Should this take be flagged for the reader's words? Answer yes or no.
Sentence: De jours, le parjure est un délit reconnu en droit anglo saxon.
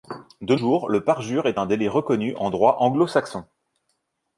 no